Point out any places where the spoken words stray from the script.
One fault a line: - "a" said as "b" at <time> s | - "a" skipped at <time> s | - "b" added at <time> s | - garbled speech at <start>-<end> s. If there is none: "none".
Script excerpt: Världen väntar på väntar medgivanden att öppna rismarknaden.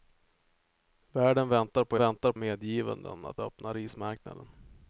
none